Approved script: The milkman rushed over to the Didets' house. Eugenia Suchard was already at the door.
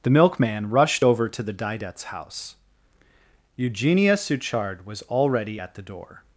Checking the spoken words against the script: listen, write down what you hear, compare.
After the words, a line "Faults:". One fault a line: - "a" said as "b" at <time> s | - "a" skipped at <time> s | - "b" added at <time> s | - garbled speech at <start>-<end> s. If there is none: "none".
The milkman rushed over to the Didets' house. Eugenia Suchard was already at the door.
Faults:
none